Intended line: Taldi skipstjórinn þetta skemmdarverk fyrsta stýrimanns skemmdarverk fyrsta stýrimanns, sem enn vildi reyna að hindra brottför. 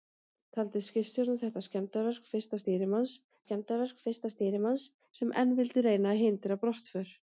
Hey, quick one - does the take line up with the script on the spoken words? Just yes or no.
yes